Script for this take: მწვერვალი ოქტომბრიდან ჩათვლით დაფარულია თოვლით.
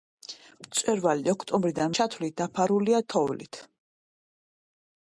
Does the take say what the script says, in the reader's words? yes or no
yes